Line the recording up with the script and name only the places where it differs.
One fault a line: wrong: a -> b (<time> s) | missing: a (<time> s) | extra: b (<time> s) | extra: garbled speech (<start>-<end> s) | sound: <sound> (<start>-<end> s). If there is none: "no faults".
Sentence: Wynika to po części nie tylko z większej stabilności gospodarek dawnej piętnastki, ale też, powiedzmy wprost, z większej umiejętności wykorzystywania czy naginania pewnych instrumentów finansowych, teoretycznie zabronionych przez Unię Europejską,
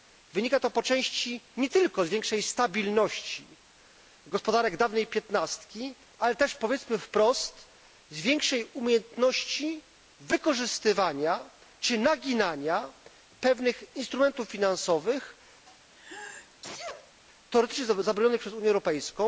sound: sneeze (15.6-17.1 s)